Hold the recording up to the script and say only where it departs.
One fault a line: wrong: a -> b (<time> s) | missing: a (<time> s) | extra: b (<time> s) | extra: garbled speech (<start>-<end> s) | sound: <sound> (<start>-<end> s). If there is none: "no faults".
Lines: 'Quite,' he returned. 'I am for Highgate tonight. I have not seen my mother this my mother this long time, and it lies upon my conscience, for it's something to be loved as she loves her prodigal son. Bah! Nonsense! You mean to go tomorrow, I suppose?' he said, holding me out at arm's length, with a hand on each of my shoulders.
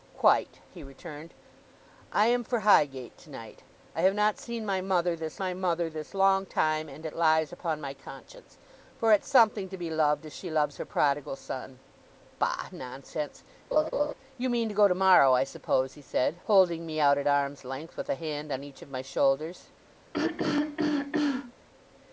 sound: laugh (13.7-14.1 s)
sound: throat clearing (20.1-21.5 s)